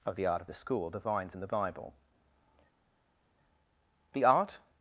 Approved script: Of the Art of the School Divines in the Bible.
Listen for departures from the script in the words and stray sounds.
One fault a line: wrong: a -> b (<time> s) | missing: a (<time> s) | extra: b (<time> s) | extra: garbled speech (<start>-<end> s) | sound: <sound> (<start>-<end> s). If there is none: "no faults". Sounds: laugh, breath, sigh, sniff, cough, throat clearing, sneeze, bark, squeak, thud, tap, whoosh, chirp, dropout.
extra: The art (4.1 s)